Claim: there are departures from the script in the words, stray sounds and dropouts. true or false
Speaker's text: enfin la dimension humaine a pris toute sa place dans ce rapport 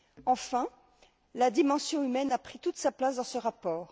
false